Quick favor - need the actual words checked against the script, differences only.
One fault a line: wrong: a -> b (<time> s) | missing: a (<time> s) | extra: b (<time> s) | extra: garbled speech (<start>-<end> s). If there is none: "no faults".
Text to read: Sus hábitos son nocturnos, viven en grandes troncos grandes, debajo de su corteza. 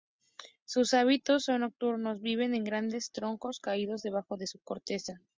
wrong: grandes -> caídos (3.6 s)